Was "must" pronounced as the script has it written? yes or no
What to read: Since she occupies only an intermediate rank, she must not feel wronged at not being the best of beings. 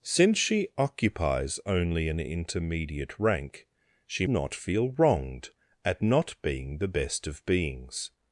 no